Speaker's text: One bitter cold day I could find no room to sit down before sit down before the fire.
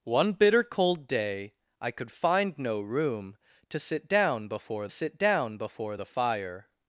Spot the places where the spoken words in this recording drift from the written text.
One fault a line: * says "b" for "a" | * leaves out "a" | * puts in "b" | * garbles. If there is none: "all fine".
all fine